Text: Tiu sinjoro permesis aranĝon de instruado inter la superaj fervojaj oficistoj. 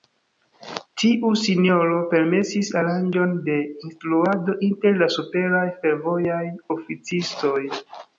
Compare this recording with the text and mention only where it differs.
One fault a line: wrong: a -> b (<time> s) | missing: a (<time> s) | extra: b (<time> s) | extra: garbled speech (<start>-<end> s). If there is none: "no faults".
no faults